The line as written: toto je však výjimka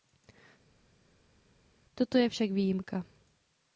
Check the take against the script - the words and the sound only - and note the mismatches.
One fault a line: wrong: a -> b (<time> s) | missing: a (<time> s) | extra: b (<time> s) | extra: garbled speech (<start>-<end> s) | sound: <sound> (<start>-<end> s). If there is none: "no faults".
no faults